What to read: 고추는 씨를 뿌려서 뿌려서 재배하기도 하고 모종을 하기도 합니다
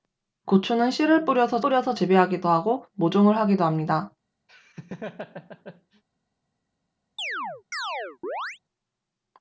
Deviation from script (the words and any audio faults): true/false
true